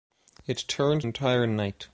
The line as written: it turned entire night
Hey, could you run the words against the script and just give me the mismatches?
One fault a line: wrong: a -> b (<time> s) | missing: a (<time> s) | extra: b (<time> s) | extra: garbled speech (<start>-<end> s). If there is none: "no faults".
no faults